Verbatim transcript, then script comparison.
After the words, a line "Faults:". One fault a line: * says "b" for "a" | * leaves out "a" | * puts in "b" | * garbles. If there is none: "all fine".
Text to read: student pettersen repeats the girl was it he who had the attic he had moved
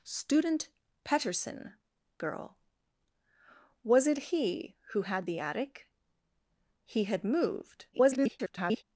student pettersen girl was it he who had the attic he had moved [garbled]
Faults:
* leaves out "repeats the"
* garbles